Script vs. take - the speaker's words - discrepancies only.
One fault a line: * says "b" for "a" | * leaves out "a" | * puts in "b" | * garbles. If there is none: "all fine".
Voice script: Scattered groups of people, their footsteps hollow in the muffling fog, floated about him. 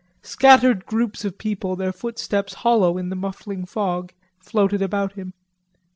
all fine